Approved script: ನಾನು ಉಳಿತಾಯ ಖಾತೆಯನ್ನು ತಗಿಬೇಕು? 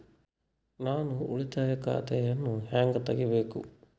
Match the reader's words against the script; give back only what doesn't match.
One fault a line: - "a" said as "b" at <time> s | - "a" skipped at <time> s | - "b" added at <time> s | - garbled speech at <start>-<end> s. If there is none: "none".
- "ಹೆಂಗ್" added at 2.6 s